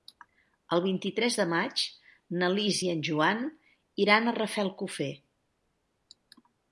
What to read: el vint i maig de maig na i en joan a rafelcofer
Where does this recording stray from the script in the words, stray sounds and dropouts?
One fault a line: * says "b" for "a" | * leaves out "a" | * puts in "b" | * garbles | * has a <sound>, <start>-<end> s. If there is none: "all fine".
* says "tres" for "maig"
* puts in "lis"
* puts in "iran"